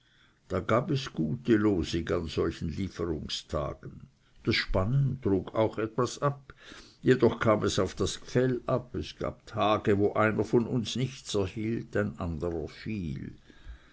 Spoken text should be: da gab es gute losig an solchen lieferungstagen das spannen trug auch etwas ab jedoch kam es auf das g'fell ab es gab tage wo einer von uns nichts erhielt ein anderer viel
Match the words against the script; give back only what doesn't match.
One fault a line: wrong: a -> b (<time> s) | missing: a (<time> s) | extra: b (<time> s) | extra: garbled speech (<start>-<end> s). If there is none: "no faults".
no faults